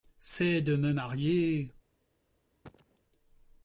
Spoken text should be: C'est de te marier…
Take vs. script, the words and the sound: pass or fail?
fail